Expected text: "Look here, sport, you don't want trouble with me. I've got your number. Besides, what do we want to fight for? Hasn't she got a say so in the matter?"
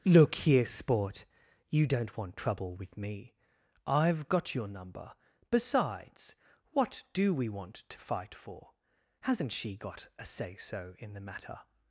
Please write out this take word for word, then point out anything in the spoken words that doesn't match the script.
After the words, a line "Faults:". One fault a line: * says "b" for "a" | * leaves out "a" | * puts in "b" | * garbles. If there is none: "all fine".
"Look here, sport, you don't want trouble with me. I've got your number. Besides, what do we want to fight for? Hasn't she got a say so in the matter?"
Faults:
all fine